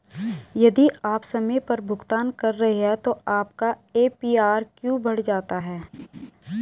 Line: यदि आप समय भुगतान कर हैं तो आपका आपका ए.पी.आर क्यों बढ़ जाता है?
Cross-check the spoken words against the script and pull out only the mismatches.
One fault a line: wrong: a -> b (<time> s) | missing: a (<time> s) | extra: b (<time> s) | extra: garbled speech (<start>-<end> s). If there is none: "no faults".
extra: पर (1.6 s)
extra: रहे (2.5 s)
missing: आपका (3.7 s)